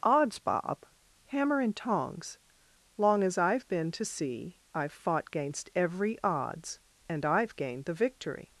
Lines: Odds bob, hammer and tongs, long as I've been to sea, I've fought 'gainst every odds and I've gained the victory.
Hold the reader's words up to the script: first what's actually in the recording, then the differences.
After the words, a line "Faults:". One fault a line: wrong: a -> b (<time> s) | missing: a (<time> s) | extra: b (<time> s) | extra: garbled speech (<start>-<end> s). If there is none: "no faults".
Odds bob, hammer and tongs, long as I've been to sea, I've fought 'gainst every odds and I've gained the victory.
Faults:
no faults